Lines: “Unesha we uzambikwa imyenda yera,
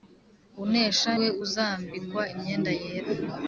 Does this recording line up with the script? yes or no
yes